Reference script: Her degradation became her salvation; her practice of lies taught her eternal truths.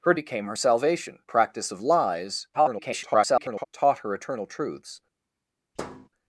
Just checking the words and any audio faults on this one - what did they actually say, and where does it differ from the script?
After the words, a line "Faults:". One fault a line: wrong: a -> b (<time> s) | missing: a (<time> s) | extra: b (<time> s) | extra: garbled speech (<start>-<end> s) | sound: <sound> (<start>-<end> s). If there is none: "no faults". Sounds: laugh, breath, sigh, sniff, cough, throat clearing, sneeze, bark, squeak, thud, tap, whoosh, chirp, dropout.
Her became her salvation; practice of lies [garbled] taught her eternal truths.
Faults:
missing: degradation (0.1 s)
missing: her (1.2 s)
extra: garbled speech (2.5-3.6 s)
sound: thud (5.8-6.1 s)